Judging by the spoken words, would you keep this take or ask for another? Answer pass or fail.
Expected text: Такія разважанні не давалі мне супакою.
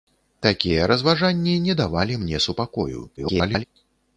fail